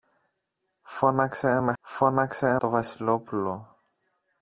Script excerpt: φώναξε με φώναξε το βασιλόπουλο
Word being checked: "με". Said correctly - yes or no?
yes